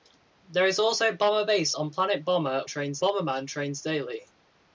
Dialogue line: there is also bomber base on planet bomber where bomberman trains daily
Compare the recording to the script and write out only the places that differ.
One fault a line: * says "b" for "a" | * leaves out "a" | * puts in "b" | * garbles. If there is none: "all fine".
* says "trains" for "where"